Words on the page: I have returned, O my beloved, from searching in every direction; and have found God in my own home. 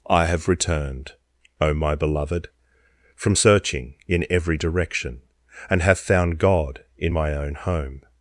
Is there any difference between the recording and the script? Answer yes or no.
no